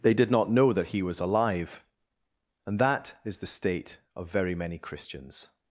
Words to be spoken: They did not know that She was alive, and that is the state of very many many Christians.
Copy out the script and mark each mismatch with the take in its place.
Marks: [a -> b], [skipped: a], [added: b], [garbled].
They did not know that [She -> He] was alive, and that is the state of very many [skipped: many] Christians.